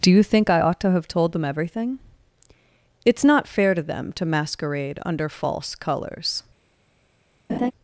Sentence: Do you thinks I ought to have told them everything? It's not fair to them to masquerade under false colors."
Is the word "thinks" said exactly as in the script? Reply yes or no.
no